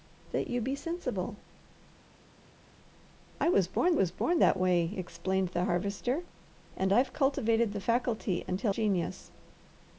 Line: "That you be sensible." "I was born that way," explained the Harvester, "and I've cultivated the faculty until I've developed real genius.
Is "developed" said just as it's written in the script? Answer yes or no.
no